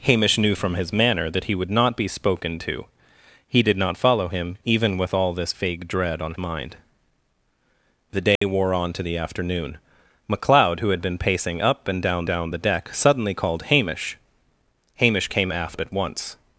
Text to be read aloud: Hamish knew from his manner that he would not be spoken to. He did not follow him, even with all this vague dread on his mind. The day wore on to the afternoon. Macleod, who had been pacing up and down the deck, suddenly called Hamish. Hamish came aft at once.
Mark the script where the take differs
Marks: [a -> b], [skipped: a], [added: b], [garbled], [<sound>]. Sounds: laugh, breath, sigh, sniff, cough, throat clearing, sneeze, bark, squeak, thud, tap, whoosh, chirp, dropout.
Hamish knew from his manner that he would not be spoken to. He did not follow him, even with all this vague dread on [skipped: his] mind. The day [dropout] wore on to the afternoon. Macleod, who had been pacing up and down [added: down] the deck, suddenly called Hamish. Hamish came aft at once.